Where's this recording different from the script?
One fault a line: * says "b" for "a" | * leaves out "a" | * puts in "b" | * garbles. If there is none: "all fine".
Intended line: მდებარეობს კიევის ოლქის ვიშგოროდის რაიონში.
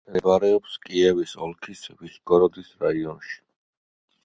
all fine